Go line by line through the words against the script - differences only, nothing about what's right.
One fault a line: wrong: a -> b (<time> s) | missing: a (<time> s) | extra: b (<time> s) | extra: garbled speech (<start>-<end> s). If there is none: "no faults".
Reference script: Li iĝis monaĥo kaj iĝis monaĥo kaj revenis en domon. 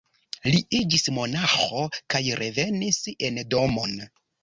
missing: iĝis monaĥo kaj (2.2 s)